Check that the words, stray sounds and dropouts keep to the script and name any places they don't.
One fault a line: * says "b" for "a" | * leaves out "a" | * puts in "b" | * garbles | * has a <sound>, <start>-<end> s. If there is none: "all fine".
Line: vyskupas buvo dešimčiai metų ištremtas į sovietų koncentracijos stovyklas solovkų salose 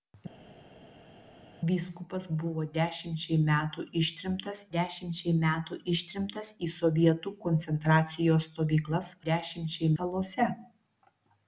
* puts in "dešimčiai metų ištremtas"
* says "dešimčiai" for "solovkų"